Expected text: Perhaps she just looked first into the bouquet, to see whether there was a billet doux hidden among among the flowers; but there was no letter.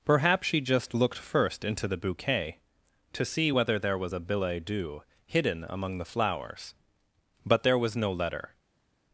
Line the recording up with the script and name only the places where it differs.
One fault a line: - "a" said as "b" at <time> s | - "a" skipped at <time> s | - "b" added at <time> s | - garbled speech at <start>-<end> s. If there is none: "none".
- "among" skipped at 6.0 s